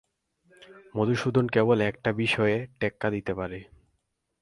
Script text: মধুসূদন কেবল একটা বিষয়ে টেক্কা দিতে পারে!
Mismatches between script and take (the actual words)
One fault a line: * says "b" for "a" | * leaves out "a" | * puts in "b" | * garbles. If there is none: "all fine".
all fine